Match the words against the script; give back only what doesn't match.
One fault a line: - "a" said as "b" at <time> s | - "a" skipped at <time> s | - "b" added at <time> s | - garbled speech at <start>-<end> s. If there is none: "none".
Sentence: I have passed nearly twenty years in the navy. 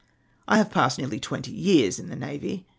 none